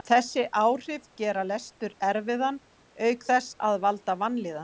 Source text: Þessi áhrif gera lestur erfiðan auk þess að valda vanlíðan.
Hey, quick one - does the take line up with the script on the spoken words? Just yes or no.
yes